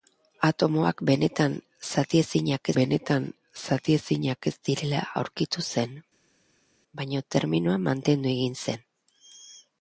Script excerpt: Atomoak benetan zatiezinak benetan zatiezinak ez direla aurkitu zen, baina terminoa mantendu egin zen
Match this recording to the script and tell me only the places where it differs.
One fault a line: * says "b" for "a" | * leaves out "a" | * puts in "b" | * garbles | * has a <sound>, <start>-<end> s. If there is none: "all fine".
all fine